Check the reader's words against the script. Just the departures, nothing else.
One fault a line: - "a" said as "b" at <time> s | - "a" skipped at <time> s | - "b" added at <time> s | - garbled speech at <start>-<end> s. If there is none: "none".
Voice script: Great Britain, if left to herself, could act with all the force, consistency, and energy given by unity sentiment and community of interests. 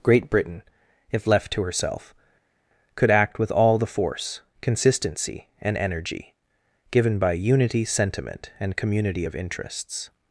none